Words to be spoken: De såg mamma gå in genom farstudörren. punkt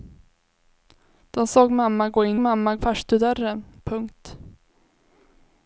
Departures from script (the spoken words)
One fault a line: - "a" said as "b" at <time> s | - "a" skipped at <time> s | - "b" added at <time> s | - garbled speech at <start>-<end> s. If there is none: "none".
- "genom" said as "mamma" at 2.4 s